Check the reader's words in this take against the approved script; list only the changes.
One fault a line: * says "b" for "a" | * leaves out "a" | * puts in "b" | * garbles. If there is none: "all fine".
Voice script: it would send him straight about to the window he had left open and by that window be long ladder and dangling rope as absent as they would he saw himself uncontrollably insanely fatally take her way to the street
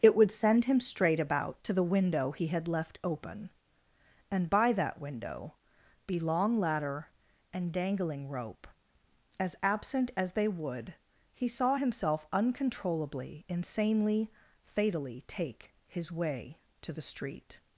* says "his" for "her"